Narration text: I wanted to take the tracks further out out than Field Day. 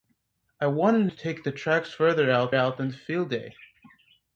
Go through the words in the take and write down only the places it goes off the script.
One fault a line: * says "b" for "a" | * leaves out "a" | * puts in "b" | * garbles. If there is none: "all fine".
all fine